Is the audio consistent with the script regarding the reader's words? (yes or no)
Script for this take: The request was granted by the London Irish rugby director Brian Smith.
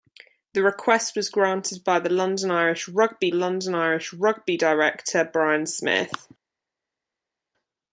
no